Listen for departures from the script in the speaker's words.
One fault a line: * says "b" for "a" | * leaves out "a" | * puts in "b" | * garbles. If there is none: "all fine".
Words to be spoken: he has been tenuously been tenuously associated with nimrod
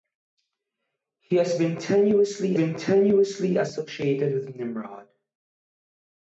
all fine